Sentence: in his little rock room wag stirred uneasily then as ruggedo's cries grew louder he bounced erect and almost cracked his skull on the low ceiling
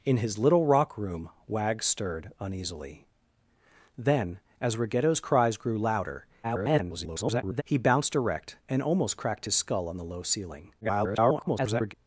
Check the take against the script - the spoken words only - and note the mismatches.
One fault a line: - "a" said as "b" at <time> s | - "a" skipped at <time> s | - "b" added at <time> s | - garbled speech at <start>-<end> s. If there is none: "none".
- garbled speech at 6.4-7.6 s
- garbled speech at 10.8-11.9 s